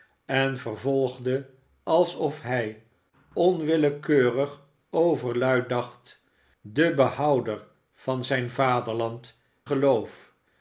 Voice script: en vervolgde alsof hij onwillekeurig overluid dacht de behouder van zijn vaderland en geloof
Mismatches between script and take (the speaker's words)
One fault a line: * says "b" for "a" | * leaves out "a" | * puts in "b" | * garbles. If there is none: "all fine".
* leaves out "en"